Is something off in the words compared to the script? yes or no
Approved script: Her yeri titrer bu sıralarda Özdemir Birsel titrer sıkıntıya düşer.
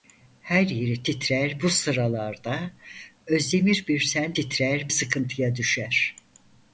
no